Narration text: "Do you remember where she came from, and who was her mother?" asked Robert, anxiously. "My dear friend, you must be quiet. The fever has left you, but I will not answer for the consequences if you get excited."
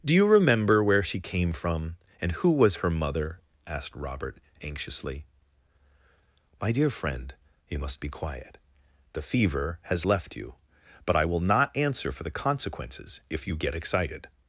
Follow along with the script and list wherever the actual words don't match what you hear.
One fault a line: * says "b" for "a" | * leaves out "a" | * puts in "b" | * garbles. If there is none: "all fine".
all fine